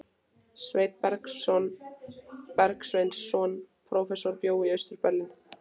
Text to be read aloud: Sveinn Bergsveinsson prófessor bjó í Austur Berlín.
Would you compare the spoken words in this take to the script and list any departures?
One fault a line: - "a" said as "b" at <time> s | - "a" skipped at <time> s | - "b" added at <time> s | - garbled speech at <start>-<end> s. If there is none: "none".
none